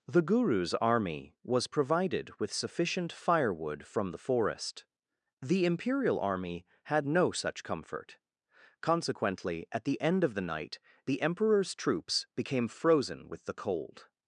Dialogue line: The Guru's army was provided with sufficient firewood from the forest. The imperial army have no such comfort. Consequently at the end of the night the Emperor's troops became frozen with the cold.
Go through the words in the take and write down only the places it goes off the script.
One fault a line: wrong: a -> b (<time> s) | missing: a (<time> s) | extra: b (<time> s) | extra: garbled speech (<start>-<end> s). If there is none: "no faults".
wrong: have -> had (6.8 s)